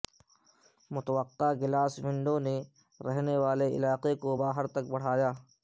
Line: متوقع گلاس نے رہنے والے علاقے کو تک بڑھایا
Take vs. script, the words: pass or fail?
fail